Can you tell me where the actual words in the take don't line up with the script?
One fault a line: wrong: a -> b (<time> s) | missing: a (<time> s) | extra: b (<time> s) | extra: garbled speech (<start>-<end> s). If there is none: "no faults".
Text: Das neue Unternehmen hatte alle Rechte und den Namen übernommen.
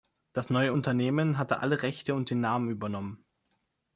no faults